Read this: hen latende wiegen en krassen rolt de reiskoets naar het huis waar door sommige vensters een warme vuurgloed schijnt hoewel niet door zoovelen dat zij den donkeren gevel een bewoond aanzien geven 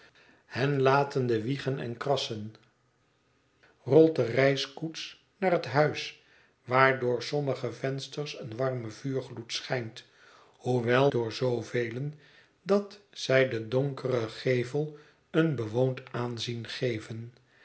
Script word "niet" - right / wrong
wrong